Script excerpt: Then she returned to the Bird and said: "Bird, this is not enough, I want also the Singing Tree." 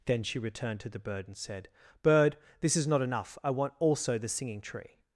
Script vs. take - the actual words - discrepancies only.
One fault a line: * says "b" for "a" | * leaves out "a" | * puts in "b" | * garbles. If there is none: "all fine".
all fine